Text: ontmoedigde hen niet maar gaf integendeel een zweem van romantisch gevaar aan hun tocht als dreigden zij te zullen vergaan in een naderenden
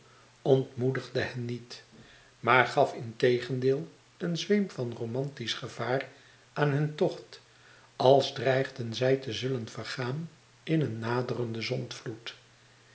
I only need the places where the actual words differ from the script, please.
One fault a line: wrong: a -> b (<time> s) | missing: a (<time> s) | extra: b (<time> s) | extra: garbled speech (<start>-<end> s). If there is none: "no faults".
no faults